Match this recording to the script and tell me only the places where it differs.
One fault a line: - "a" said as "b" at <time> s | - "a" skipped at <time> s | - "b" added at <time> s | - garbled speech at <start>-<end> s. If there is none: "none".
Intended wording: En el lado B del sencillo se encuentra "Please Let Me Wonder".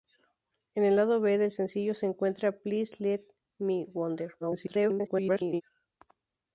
- garbled speech at 4.4-5.6 s